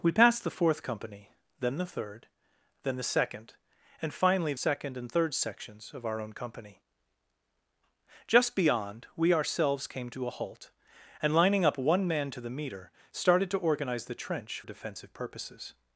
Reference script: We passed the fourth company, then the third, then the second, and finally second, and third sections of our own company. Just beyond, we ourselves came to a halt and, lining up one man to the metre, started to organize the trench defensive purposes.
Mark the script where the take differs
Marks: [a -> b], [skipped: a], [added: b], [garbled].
We passed the fourth company, then the third, then the second, and finally second, and third sections of our own company. Just beyond, we ourselves came to a halt and, lining up one man to the metre, started to organize the trench defensive purposes.